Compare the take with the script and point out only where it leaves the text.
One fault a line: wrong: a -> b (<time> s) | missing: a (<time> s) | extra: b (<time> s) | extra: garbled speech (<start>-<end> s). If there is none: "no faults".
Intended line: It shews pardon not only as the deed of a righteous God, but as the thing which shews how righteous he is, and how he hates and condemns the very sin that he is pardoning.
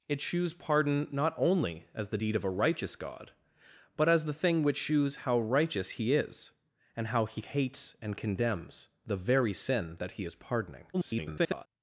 extra: garbled speech (10.9-11.7 s)